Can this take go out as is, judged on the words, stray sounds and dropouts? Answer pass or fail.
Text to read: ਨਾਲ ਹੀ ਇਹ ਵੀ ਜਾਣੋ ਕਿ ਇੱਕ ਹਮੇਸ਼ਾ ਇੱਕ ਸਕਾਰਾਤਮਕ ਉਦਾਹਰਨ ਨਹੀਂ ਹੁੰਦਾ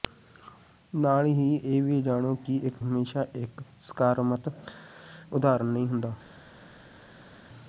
pass